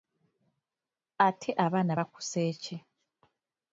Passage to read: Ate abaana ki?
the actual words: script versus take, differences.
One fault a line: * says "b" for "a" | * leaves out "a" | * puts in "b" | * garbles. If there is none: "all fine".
* puts in "bakusse"